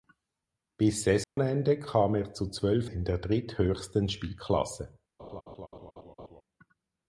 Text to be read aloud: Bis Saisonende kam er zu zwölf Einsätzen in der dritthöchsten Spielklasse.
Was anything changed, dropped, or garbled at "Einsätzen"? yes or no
yes